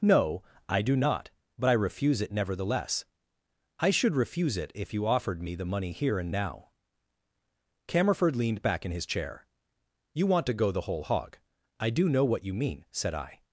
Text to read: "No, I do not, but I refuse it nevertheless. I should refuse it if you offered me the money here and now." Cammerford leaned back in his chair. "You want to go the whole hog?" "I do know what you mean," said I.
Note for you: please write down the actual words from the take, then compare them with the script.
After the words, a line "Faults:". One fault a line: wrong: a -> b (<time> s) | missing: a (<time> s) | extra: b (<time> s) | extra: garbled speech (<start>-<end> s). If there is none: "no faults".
"No, I do not, but I refuse it nevertheless. I should refuse it if you offered me the money here and now." Cammerford leaned back in his chair. "You want to go the whole hog?" "I do know what you mean," said I.
Faults:
no faults